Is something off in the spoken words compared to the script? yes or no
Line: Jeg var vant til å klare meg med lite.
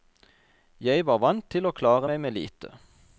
no